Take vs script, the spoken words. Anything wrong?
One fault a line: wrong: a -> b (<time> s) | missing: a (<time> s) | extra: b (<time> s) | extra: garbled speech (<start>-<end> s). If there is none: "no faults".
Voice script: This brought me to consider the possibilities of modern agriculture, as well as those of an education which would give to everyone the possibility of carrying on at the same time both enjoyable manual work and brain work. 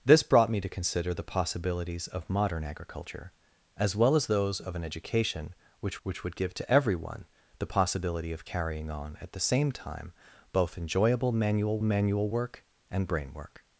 extra: which (6.0 s)
extra: manual (11.8 s)